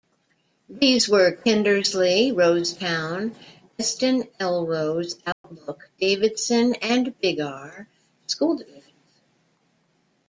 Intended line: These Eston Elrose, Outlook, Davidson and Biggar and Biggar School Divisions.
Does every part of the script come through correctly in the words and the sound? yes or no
no